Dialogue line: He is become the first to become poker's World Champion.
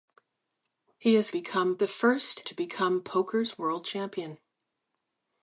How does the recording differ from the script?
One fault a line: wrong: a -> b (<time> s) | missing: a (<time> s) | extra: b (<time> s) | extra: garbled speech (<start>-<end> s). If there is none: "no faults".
no faults